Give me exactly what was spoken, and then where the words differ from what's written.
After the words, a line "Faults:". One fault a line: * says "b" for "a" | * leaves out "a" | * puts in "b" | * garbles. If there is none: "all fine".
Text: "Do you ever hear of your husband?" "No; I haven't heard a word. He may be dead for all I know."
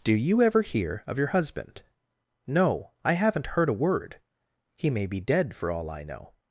"Do you ever hear of your husband?" "No; I haven't heard a word. He may be dead for all I know."
Faults:
all fine